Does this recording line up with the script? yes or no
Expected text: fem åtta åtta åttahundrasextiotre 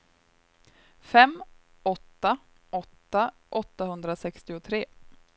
yes